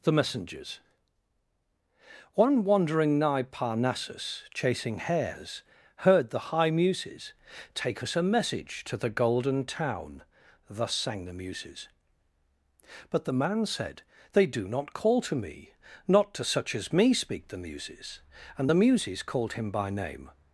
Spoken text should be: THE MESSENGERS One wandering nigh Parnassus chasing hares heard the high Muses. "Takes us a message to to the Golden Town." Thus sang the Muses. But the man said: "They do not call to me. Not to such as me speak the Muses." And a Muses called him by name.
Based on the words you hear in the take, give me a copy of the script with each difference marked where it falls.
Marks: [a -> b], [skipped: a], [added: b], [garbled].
THE MESSENGERS One wandering nigh Parnassus chasing hares heard the high Muses. ["Takes -> Take] us a message to [skipped: to] the Golden Town." Thus sang the Muses. But the man said: "They do not call to me. Not to such as me speak the Muses." And [a -> the] Muses called him by name.